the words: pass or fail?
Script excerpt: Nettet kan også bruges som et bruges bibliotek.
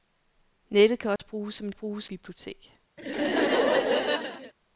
pass